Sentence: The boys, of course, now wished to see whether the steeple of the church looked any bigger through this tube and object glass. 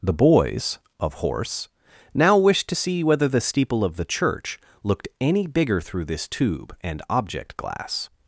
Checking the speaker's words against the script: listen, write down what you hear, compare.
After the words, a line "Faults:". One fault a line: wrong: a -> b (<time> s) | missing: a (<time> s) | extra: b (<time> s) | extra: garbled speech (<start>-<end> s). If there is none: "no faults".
The boys, of horse, now wished to see whether the steeple of the church looked any bigger through this tube and object glass.
Faults:
wrong: course -> horse (1.1 s)